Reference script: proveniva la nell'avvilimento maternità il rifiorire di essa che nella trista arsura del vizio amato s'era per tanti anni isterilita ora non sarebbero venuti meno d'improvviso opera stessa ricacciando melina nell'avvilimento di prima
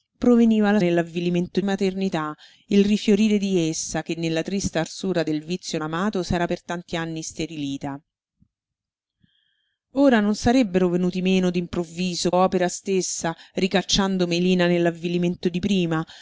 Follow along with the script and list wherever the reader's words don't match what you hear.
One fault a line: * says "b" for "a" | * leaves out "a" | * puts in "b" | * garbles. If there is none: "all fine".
all fine